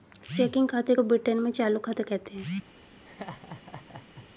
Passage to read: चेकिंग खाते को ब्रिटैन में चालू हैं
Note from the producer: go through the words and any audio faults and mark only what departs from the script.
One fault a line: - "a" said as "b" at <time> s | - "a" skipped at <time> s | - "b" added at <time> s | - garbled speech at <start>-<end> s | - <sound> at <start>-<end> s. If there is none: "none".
- "खाता कहते" added at 1.8 s
- laugh at 3.1-4.3 s